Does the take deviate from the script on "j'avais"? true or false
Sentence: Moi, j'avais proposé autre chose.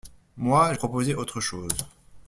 true